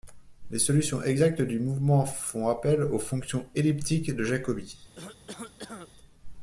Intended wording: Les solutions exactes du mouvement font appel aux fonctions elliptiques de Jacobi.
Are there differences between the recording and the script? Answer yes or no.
no